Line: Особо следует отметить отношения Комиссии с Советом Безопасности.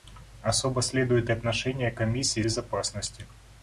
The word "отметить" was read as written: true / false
false